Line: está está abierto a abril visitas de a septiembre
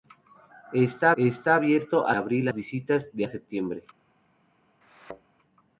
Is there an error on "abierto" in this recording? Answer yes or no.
no